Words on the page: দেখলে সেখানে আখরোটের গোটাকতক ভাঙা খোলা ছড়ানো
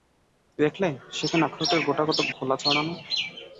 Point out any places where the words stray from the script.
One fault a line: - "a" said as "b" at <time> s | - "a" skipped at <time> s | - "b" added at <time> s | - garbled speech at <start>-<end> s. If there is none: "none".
- "ভাঙা" skipped at 2.3 s